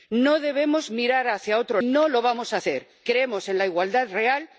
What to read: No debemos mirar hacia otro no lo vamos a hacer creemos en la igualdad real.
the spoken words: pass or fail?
pass